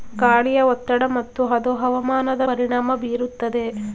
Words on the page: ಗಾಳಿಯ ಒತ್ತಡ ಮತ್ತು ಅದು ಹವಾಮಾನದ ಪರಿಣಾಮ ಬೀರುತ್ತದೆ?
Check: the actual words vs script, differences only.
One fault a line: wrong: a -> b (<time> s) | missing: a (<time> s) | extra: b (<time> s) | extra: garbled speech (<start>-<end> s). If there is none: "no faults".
no faults